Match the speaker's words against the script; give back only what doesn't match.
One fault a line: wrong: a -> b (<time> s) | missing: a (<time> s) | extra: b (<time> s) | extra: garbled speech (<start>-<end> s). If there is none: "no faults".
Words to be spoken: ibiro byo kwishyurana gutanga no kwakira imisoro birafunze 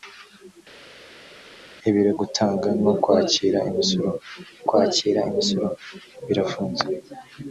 wrong: byo kwishyurana gutanga no -> gutanga no kwakira imisoro (2.2 s)